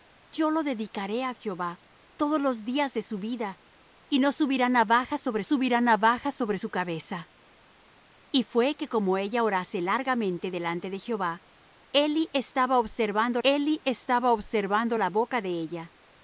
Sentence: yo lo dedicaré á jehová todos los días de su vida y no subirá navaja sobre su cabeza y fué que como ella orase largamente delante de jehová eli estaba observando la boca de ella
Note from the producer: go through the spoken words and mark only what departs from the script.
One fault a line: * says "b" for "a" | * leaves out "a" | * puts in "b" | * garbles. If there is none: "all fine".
* puts in "subirá navaja sobre"
* puts in "eli estaba observando"